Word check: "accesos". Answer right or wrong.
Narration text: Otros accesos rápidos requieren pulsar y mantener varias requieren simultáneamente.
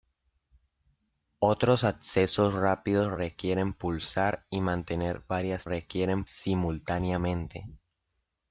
right